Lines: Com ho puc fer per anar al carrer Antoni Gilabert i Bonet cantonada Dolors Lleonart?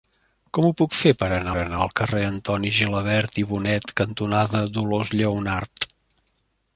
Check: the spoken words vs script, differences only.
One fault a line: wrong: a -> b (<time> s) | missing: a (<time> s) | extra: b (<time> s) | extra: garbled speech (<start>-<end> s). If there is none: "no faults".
extra: anar (1.6 s)